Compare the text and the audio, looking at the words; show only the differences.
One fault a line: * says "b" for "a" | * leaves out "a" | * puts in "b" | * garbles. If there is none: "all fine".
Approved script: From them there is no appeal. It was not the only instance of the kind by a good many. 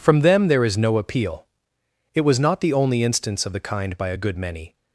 all fine